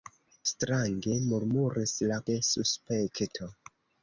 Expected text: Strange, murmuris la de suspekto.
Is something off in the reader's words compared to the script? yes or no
no